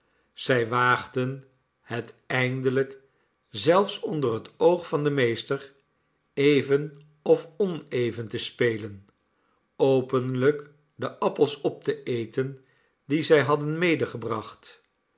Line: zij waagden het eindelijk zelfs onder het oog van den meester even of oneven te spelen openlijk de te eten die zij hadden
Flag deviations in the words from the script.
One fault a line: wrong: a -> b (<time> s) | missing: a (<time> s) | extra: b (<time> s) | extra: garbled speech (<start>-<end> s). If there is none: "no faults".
extra: appels op (11.2 s)